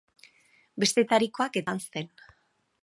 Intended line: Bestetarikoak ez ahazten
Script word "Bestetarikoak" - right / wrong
right